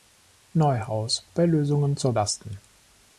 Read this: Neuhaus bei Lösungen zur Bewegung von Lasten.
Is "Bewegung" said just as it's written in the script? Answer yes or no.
no